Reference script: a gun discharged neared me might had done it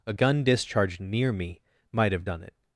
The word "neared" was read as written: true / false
false